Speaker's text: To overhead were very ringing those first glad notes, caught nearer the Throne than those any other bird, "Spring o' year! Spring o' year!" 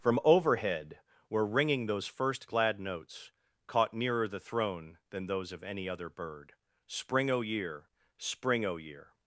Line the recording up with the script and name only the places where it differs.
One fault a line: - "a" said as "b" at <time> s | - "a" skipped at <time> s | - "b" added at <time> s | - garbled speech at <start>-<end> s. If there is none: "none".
- "To" said as "From" at 0.0 s
- "very" skipped at 1.5 s
- "of" added at 5.5 s